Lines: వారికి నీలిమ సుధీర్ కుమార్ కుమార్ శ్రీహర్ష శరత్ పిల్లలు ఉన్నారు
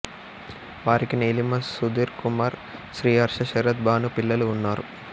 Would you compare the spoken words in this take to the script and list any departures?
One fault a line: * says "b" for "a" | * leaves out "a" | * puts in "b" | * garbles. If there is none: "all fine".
* leaves out "కుమార్"
* puts in "భాను"